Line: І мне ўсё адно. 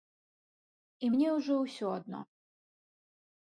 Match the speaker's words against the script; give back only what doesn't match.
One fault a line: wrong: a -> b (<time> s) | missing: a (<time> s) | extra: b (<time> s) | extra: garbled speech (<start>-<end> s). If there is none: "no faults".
extra: ўжо (1.4 s)